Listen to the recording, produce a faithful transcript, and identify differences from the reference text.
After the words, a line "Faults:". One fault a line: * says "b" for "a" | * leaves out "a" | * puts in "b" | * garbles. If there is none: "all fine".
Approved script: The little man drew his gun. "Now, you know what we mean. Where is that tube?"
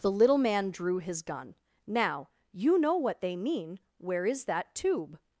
The little man drew his gun. "Now, you know what they mean. Where is that tube?"
Faults:
* says "they" for "we"